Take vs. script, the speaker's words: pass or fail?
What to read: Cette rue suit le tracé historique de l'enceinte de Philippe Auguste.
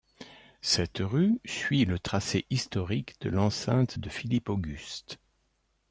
pass